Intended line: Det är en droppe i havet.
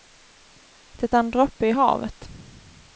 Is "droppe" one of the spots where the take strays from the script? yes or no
no